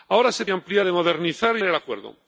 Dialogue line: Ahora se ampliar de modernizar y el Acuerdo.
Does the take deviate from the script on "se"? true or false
false